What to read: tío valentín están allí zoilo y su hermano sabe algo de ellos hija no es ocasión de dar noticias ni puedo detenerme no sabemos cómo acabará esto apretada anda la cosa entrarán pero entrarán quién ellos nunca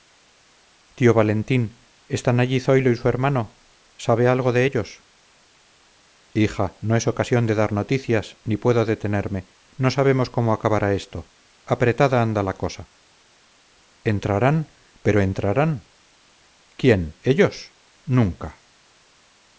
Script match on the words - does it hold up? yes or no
yes